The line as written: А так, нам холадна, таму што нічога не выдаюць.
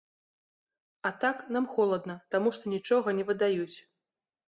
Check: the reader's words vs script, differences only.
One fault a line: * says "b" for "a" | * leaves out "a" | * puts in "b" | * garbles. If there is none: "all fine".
all fine